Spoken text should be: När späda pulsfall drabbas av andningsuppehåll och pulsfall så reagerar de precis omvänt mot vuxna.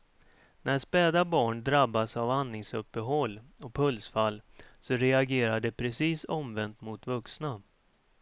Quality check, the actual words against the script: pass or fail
fail